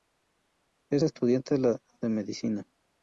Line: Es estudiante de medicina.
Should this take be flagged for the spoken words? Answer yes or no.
no